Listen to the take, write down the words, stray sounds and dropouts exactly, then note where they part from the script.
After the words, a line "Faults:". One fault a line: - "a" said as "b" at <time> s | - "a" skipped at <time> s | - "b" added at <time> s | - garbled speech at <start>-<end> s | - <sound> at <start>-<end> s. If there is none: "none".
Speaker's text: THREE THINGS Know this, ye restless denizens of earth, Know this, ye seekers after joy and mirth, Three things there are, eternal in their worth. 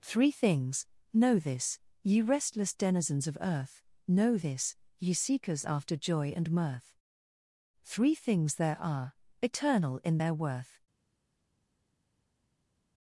THREE THINGS Know this, ye restless denizens of earth, Know this, ye seekers after joy and mirth, Three things there are, eternal in their worth.
Faults:
none